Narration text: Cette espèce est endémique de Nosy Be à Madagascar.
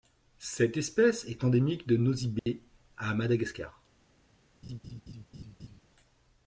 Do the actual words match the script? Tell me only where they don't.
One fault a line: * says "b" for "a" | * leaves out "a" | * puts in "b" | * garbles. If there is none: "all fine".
all fine